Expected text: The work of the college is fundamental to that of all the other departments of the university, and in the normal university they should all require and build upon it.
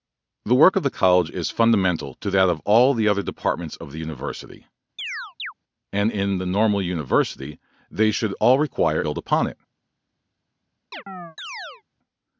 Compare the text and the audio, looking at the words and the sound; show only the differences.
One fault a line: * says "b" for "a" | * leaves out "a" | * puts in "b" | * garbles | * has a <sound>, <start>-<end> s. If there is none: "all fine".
* has a chirp, 5.0-5.5 s
* leaves out "and"
* has a chirp, 10.9-11.8 s